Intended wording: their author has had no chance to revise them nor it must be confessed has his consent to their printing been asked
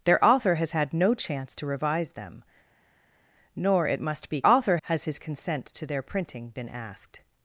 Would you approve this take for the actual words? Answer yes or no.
no